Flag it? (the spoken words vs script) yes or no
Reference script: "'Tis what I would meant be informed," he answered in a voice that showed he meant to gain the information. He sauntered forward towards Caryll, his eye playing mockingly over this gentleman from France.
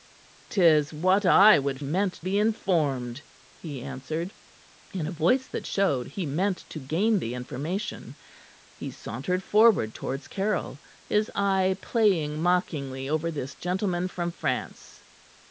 no